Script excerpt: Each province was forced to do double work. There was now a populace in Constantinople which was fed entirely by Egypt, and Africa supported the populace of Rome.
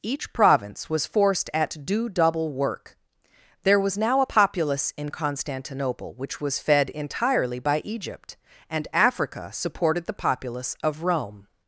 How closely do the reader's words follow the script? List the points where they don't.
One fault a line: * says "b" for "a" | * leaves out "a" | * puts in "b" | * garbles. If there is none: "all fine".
* says "at" for "to"